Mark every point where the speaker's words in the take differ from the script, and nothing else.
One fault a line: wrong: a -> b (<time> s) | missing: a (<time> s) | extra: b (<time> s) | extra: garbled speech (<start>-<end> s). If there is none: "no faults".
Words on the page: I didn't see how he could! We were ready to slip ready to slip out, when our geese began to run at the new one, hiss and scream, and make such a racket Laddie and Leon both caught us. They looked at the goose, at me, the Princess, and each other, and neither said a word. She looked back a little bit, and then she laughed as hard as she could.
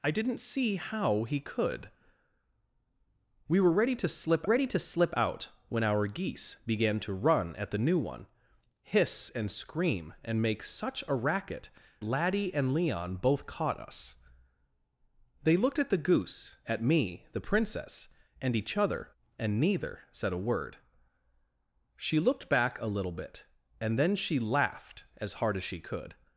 no faults